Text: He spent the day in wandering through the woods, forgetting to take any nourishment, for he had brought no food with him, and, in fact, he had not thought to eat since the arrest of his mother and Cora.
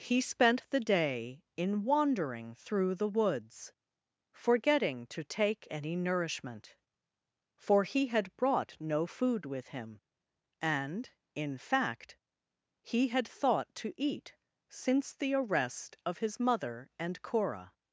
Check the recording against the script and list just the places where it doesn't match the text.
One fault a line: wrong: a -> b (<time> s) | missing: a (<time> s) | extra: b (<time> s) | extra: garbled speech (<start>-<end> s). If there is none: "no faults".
missing: not (13.3 s)